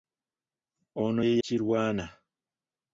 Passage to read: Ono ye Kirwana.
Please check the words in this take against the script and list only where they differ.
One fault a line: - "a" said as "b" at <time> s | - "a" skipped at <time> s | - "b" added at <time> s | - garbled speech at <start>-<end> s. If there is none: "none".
none